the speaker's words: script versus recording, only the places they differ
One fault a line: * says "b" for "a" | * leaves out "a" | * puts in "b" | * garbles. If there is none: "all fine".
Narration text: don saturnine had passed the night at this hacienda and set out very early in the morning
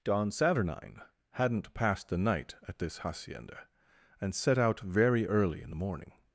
* says "hadn't" for "had"